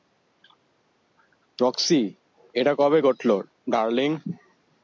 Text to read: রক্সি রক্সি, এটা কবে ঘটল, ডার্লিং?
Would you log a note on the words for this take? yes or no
yes